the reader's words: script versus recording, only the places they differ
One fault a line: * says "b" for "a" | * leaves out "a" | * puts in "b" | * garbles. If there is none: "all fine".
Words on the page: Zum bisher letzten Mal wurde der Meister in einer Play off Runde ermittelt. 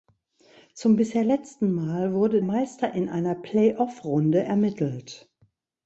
* leaves out "der"